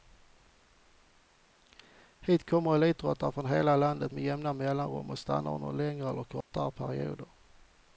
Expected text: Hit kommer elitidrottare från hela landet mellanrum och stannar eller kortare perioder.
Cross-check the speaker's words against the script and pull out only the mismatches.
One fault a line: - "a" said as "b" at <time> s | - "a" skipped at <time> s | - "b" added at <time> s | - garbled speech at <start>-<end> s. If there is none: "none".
- "med jämna" added at 4.1 s
- "under längre" added at 5.5 s